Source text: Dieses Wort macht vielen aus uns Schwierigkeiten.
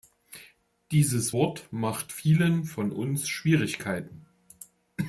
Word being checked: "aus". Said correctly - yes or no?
no